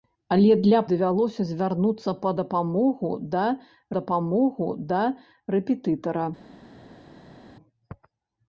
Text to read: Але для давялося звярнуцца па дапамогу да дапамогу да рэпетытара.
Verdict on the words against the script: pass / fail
pass